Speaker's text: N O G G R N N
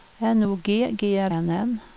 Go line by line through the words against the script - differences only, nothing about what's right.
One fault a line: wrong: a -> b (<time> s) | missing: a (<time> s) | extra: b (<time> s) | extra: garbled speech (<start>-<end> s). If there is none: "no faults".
no faults